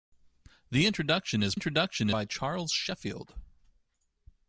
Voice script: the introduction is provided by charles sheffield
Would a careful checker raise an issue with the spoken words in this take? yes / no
yes